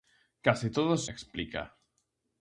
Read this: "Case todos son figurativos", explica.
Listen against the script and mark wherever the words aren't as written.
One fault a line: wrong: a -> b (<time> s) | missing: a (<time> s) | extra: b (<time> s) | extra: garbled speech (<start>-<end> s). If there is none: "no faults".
missing: son figurativos (1.1 s)